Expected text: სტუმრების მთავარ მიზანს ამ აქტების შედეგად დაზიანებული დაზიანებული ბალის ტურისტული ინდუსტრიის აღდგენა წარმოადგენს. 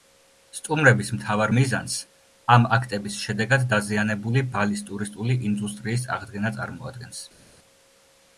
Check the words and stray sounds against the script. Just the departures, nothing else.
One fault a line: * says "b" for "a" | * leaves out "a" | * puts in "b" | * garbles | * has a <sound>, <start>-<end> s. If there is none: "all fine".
* leaves out "დაზიანებული"